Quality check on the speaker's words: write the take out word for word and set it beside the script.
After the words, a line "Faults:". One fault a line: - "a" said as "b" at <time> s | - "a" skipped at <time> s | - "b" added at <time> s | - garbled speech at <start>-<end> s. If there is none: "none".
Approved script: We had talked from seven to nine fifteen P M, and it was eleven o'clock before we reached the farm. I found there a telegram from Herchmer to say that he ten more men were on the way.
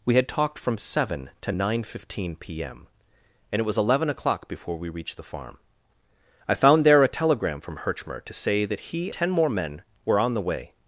We had talked from seven to nine fifteen P M, and it was eleven o'clock before we reached the farm. I found there a telegram from Herchmer to say that he ten more men were on the way.
Faults:
none